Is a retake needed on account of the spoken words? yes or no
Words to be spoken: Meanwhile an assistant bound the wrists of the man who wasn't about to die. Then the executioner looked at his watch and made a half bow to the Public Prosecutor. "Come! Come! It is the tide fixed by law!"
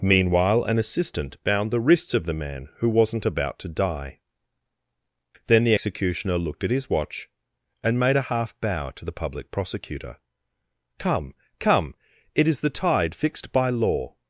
no